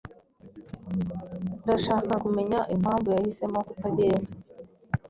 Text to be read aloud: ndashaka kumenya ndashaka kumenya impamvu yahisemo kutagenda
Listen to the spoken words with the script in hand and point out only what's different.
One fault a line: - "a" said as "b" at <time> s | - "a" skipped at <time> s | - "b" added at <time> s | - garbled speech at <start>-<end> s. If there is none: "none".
- "ndashaka kumenya" skipped at 2.6 s